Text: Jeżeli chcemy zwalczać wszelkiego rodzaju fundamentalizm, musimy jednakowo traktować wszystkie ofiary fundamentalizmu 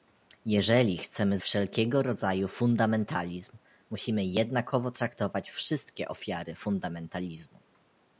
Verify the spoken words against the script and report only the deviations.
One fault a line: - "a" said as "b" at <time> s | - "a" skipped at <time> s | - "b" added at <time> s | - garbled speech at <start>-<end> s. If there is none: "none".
- "zwalczać" skipped at 1.4 s